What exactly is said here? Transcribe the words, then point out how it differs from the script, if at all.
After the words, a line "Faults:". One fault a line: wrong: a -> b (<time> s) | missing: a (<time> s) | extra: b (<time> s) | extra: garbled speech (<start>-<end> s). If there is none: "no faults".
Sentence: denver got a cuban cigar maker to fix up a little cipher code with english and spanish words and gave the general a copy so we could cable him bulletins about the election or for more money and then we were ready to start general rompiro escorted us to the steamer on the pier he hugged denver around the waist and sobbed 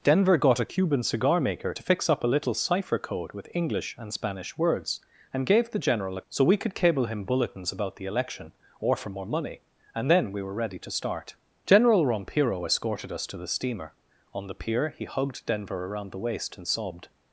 denver got a cuban cigar maker to fix up a little cipher code with english and spanish words and gave the general a so we could cable him bulletins about the election or for more money and then we were ready to start general rompiro escorted us to the steamer on the pier he hugged denver around the waist and sobbed
Faults:
missing: copy (6.2 s)